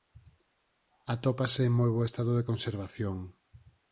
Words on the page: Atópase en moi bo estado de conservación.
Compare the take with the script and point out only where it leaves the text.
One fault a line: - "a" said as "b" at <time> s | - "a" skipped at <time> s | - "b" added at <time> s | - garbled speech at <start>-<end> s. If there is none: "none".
none